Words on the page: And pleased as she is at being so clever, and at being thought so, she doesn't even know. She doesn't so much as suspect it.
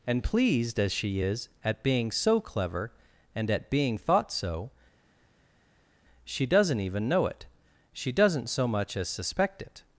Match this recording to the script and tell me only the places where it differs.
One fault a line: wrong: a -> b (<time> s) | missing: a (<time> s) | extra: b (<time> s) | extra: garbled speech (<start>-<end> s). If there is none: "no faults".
extra: it (7.3 s)